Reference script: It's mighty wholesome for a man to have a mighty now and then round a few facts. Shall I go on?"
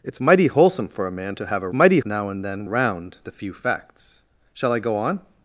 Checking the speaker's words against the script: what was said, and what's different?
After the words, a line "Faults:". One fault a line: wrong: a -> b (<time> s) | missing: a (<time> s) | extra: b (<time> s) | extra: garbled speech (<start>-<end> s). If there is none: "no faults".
It's mighty wholesome for a man to have a mighty now and then round a few facts. Shall I go on?"
Faults:
no faults